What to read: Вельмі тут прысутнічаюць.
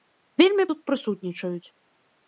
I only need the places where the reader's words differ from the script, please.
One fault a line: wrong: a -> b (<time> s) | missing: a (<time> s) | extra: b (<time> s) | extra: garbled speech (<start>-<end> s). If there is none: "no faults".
no faults